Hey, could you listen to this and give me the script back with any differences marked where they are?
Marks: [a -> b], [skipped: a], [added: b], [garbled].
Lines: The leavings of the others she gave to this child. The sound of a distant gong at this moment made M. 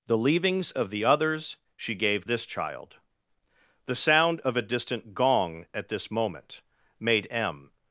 The leavings of the others she gave [skipped: to] this child. The sound of a distant gong at this moment made M.